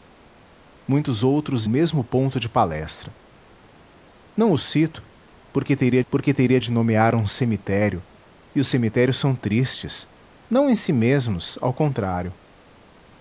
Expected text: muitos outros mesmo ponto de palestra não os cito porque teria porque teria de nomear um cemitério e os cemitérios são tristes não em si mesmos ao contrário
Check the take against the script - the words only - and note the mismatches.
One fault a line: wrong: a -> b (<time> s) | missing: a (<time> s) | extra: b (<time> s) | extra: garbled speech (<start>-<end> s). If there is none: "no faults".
no faults